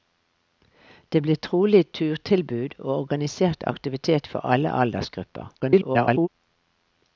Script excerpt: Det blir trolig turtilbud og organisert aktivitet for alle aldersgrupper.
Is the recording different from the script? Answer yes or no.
yes